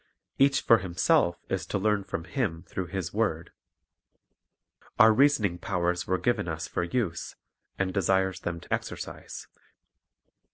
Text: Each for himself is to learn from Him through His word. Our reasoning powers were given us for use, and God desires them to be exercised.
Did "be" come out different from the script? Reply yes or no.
yes